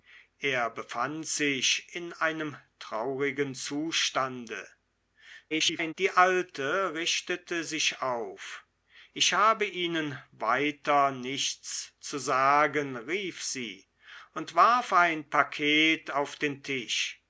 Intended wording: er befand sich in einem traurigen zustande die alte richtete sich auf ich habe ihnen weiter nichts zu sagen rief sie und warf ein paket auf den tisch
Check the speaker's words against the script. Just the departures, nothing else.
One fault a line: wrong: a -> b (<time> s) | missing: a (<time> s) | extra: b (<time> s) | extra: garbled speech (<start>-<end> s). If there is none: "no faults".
extra: garbled speech (5.5-5.9 s)